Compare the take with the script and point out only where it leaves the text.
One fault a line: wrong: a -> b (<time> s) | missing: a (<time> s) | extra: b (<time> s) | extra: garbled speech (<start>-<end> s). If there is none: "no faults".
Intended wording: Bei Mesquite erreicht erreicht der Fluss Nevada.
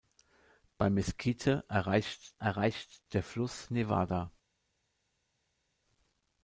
no faults